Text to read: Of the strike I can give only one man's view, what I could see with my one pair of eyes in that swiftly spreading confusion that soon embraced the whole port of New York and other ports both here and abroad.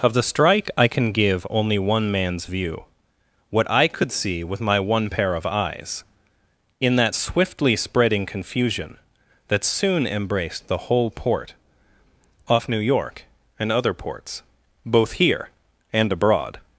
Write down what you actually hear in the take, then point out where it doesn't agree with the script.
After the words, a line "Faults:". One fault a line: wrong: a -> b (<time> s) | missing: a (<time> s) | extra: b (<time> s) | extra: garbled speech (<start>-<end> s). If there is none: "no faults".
Of the strike I can give only one man's view, what I could see with my one pair of eyes in that swiftly spreading confusion that soon embraced the whole port off New York and other ports both here and abroad.
Faults:
wrong: of -> off (12.5 s)